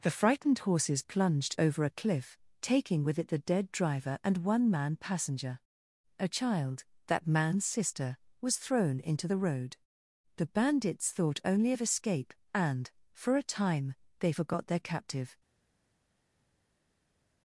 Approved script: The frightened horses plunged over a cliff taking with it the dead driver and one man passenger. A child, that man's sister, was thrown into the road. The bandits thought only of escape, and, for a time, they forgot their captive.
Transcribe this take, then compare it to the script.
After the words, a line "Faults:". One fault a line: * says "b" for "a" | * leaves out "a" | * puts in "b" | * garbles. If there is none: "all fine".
The frightened horses plunged over a cliff taking with it the dead driver and one man passenger. A child, that man's sister, was thrown into the road. The bandits thought only of escape, and, for a time, they forgot their captive.
Faults:
all fine